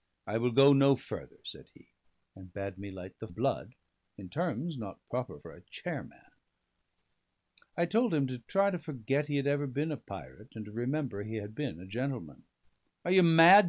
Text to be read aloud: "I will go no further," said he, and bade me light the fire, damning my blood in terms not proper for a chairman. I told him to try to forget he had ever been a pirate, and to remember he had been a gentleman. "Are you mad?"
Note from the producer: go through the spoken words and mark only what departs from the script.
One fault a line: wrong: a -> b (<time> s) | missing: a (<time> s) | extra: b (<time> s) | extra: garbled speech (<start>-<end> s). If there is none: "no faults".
missing: fire damning my (3.3 s)